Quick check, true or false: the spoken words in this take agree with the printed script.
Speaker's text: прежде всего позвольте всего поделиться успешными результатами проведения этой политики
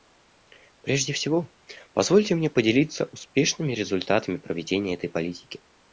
false